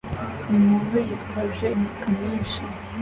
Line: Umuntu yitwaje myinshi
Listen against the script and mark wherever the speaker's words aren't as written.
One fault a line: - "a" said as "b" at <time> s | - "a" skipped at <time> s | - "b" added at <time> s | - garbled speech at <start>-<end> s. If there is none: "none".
- "imifuka" added at 1.7 s